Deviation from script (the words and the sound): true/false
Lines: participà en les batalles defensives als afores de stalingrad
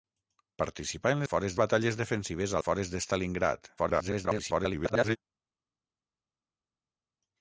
true